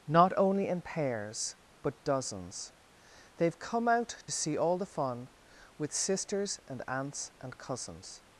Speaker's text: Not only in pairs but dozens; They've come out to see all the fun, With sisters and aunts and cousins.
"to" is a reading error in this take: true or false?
true